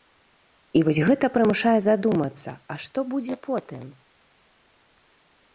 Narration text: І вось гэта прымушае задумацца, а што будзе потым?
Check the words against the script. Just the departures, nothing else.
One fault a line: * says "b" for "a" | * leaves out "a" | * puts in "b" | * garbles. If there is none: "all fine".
all fine